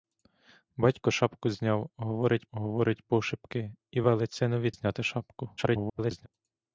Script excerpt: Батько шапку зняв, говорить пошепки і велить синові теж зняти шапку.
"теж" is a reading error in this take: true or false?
true